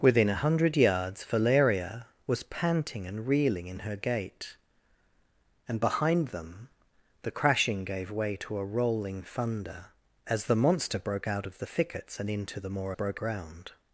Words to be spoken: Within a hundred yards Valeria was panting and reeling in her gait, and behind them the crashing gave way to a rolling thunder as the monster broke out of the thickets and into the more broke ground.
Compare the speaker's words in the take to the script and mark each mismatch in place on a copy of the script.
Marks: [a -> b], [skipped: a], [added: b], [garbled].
Within a hundred yards Valeria was panting and reeling in her gait, and behind them the crashing gave way to a rolling thunder as the monster broke out of the thickets and into the more broke ground.